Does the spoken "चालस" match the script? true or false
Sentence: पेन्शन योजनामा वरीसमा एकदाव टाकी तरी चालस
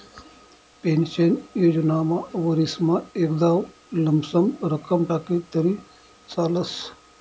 true